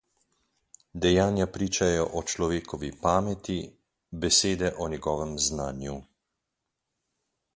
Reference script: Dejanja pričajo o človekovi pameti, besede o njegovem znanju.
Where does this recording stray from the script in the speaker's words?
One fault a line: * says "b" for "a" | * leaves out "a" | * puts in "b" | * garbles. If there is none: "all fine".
all fine